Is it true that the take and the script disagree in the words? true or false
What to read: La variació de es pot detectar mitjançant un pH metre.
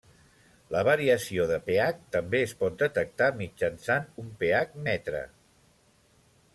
true